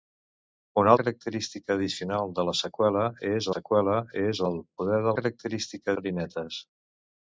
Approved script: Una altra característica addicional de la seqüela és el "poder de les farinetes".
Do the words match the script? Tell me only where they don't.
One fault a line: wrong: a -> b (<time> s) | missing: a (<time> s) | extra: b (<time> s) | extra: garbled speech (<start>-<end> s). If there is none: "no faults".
missing: altra (0.9 s)
extra: seqüela és (3.5 s)
wrong: les -> característica (5.2 s)